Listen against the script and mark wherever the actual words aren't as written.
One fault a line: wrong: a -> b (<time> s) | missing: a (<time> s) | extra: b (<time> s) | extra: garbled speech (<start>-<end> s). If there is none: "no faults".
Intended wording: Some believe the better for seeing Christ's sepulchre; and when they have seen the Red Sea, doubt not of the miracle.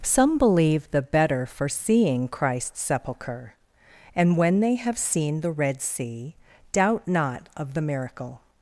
no faults